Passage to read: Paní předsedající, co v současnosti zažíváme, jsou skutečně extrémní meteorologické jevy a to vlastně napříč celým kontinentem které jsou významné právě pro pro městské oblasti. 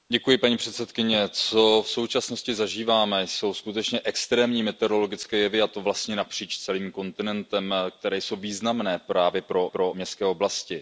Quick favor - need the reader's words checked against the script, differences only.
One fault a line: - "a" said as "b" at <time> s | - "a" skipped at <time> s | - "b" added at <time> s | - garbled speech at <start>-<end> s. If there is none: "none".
none